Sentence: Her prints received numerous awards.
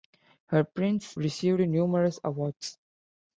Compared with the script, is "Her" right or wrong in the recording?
right